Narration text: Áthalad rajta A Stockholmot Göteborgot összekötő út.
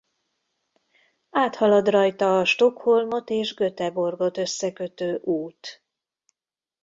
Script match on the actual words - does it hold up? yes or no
no